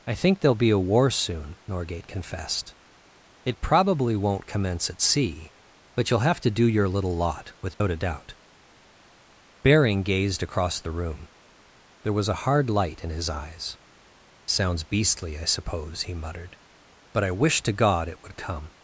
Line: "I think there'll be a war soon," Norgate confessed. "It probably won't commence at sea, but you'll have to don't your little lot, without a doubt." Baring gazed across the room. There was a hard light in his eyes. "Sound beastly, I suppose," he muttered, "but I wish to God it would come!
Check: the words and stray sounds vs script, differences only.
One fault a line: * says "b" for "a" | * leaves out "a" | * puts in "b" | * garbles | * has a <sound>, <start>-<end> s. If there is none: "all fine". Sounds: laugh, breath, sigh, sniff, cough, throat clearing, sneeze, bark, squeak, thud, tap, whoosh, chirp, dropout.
* says "do" for "don't"
* has a dropout, 7.7-7.8 s
* says "Sounds" for "Sound"